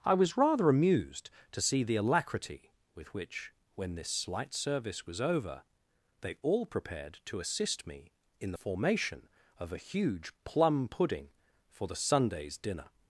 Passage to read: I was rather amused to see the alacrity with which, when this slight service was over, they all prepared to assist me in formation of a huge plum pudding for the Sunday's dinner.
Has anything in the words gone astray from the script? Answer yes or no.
no